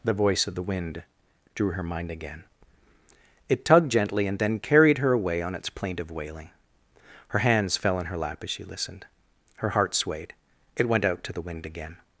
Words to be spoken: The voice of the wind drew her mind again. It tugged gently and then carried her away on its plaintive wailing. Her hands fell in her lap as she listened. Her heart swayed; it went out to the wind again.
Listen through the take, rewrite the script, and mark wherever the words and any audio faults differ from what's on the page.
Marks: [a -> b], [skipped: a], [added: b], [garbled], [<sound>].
The voice of the wind drew her mind again. It tugged gently and then carried her away on its plaintive wailing. Her hands fell in her lap as she listened. Her heart swayed; it went out to the wind again.